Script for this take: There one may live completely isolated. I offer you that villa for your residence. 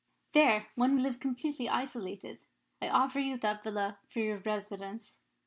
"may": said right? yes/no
no